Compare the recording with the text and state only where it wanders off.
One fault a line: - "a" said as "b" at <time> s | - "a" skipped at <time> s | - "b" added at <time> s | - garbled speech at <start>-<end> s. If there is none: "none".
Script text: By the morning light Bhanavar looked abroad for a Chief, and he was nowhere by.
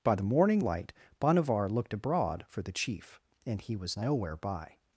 - "a" said as "the" at 2.6 s